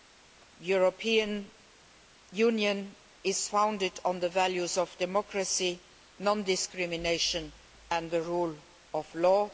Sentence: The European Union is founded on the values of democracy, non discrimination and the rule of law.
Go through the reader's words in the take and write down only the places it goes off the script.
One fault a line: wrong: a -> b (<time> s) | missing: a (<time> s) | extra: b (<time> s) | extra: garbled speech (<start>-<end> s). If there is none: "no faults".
no faults